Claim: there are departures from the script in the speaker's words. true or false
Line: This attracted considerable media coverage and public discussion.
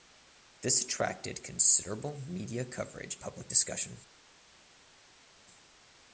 true